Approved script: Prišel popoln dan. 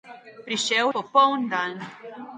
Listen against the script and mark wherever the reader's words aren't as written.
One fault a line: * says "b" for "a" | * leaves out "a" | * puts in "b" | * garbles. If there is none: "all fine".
all fine